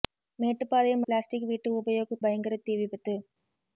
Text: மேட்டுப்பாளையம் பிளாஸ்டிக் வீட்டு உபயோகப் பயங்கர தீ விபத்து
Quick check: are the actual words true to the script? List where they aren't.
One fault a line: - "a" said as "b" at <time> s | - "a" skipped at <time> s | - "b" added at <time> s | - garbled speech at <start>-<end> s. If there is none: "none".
none